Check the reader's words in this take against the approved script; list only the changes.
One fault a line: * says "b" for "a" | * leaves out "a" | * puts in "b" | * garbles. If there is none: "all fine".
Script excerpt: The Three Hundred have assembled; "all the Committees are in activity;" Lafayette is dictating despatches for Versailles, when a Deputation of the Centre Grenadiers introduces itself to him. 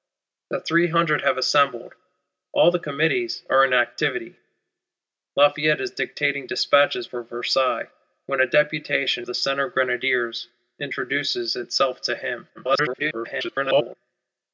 * leaves out "of"
* garbles